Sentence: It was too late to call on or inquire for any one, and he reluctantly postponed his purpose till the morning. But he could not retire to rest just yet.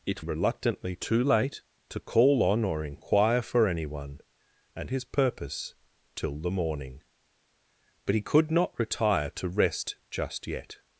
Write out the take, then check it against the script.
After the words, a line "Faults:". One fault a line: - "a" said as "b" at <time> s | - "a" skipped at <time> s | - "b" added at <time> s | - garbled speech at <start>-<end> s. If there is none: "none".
It reluctantly too late to call on or inquire for any one, and his purpose till the morning. But he could not retire to rest just yet.
Faults:
- "was" said as "reluctantly" at 0.2 s
- "he reluctantly postponed" skipped at 4.9 s